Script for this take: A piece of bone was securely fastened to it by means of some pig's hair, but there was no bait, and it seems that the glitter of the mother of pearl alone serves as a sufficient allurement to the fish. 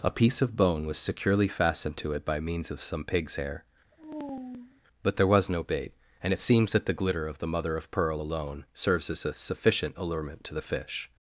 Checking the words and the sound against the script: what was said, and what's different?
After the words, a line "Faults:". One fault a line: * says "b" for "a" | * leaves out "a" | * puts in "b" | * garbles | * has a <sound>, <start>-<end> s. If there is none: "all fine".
A piece of bone was securely fastened to it by means of some pig's hair, but there was no bait, and it seems that the glitter of the mother of pearl alone serves as a sufficient allurement to the fish.
Faults:
* has a sigh, 3.9-4.8 s